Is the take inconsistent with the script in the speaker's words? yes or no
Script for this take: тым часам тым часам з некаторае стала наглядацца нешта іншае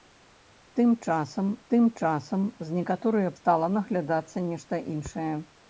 no